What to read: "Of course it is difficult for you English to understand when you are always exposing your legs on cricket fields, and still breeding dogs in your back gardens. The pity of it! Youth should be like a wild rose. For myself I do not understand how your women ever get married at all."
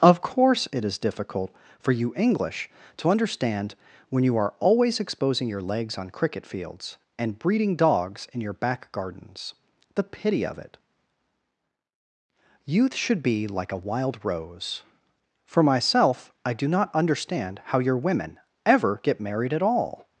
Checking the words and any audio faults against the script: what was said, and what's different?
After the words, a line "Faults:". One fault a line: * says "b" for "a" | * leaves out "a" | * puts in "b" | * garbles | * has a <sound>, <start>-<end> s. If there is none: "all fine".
"Of course it is difficult for you English to understand when you are always exposing your legs on cricket fields, and breeding dogs in your back gardens. The pity of it! Youth should be like a wild rose. For myself I do not understand how your women ever get married at all."
Faults:
* leaves out "still"